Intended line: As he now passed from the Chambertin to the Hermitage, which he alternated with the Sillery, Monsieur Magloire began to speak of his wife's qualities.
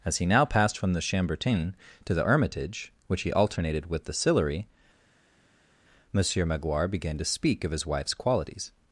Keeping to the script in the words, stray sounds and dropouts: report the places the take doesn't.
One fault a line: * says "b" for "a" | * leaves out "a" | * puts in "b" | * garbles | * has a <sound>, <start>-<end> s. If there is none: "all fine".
all fine